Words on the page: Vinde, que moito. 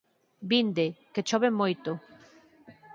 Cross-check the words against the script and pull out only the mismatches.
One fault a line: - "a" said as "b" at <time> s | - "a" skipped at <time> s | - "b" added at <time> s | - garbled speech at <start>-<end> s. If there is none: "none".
- "chove" added at 1.3 s